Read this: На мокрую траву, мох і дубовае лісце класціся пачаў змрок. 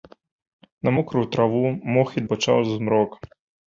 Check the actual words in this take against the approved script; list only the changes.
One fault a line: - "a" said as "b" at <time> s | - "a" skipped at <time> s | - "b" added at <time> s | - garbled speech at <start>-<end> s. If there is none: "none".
- "дубовае лісце класціся" skipped at 2.2 s